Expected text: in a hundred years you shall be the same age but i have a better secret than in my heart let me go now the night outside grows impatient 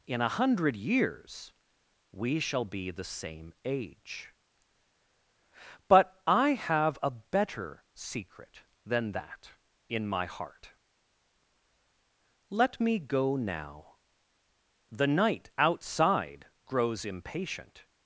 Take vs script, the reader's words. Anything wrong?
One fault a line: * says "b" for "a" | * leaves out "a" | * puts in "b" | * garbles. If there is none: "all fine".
* says "we" for "you"
* puts in "that"